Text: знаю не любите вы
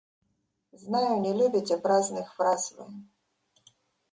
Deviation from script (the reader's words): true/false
true